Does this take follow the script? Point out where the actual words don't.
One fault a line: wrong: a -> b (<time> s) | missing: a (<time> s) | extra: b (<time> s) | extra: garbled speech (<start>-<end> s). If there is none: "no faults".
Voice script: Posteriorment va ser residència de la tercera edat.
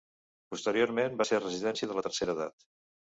no faults